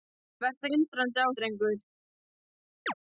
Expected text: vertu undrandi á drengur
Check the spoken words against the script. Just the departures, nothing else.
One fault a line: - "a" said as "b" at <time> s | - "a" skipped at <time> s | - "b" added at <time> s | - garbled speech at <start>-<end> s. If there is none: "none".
none